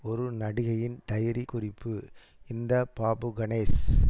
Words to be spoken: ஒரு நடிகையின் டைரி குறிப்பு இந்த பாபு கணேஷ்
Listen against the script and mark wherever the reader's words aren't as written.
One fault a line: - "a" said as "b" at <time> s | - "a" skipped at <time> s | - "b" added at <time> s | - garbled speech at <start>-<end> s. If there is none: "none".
none